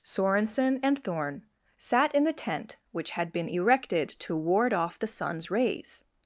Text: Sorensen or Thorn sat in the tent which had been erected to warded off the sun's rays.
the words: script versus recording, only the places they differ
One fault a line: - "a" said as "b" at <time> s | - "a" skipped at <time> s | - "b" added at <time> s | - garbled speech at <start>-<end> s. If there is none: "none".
- "or" said as "and" at 0.8 s
- "warded" said as "ward" at 4.3 s